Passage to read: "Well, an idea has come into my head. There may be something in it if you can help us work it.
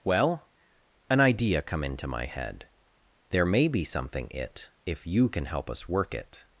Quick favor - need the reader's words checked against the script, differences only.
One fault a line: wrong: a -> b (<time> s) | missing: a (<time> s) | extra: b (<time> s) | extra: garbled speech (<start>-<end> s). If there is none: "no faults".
missing: has (1.6 s)
missing: in (4.3 s)